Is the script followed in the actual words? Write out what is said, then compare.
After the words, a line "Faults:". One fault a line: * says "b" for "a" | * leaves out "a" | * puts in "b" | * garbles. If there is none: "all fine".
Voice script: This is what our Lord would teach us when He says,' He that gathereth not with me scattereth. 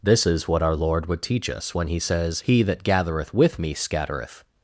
This is what our Lord would teach us when He says,' He that gathereth with me scattereth.
Faults:
* leaves out "not"